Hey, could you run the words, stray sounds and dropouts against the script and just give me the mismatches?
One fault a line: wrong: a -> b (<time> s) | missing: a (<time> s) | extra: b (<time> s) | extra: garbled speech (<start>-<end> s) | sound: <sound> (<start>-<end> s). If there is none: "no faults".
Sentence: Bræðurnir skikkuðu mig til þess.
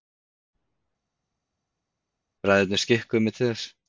no faults